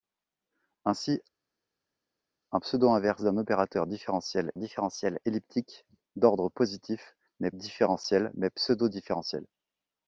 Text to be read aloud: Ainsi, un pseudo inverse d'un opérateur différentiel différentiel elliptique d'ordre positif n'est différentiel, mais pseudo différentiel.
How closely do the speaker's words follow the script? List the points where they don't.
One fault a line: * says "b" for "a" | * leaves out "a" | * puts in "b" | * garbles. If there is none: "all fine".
all fine